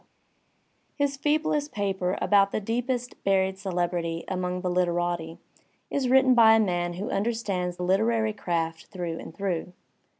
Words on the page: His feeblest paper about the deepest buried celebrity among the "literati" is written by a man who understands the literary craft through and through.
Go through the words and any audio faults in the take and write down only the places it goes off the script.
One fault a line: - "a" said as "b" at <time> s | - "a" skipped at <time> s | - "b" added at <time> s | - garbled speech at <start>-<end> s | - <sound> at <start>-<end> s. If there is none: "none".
- "the" skipped at 7.8 s